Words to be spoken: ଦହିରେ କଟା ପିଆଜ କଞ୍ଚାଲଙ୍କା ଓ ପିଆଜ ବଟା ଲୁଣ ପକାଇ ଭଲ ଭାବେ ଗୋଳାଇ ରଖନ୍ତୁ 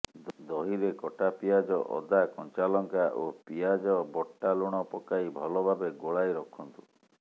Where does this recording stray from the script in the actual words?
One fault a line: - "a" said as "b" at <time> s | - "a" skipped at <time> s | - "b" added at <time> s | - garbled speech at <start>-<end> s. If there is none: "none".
- "ଅଦା" added at 1.9 s